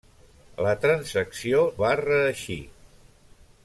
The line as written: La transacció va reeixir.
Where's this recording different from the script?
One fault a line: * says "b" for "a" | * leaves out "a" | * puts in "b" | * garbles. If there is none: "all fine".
all fine